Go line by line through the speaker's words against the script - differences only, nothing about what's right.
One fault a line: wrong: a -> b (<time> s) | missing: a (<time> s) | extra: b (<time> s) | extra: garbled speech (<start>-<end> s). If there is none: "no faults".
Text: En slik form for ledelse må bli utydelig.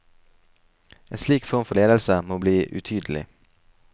no faults